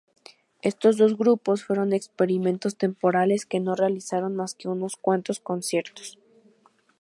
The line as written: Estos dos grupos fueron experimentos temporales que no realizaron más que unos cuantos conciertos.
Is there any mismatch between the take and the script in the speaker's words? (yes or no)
no